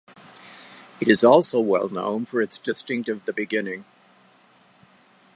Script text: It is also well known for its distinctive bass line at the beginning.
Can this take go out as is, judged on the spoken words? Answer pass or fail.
fail